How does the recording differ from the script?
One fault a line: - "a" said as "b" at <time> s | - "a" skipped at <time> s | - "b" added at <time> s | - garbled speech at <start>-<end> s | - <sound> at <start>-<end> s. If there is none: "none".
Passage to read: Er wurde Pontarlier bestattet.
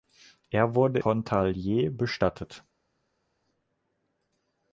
none